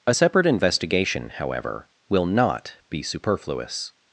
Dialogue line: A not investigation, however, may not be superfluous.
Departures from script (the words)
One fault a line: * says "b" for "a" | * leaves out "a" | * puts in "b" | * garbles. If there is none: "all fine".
* says "separate" for "not"
* says "will" for "may"